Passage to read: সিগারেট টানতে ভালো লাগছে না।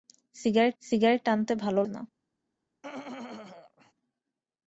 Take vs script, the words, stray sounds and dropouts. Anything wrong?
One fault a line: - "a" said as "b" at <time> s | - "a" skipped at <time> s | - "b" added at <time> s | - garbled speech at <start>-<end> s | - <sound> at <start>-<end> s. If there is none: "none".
- "সিগারেট" added at 0.8 s
- "লাগছে" skipped at 1.8 s
- throat clearing at 2.8-3.9 s